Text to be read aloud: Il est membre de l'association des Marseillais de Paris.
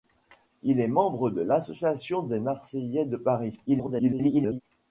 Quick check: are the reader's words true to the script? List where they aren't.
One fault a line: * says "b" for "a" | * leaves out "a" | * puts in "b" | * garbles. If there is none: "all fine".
* garbles